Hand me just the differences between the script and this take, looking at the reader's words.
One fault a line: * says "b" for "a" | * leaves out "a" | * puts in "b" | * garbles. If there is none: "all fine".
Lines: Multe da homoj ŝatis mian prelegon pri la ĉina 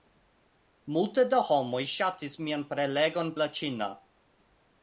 * leaves out "pri"